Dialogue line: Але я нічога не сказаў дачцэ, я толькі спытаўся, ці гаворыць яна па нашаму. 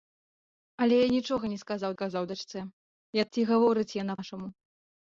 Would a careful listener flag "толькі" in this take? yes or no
yes